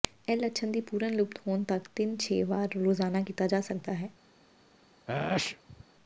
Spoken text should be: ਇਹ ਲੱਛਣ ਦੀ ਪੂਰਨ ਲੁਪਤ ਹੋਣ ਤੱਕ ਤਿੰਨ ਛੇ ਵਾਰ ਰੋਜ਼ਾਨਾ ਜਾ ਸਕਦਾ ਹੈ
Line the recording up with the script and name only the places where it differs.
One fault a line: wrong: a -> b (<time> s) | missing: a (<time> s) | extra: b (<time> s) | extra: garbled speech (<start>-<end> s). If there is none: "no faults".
extra: ਕੀਤਾ (3.2 s)